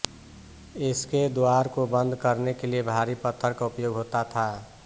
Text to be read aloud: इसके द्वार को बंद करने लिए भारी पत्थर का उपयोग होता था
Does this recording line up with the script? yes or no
no